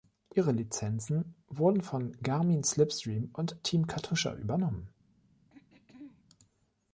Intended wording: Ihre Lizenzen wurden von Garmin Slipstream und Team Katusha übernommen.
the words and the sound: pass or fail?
fail